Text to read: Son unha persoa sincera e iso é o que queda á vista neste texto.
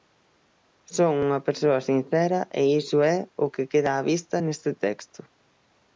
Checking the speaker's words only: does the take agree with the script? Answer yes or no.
yes